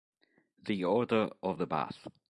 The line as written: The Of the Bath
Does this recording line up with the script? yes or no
no